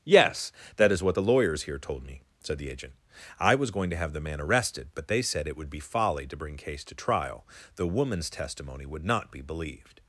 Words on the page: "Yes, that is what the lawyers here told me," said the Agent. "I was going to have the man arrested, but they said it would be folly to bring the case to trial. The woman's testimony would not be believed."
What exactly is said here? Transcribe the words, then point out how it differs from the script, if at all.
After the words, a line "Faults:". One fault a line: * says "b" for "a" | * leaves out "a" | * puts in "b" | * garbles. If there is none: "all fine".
"Yes, that is what the lawyers here told me," said the Agent. "I was going to have the man arrested, but they said it would be folly to bring case to trial. The woman's testimony would not be believed."
Faults:
* leaves out "the"